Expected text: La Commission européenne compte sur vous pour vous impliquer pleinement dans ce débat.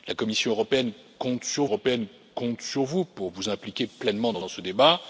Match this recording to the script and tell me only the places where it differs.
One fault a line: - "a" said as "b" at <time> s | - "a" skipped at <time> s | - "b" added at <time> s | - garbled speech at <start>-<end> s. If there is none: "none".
- "européenne compte sur" added at 1.6 s
- "dans" added at 4.4 s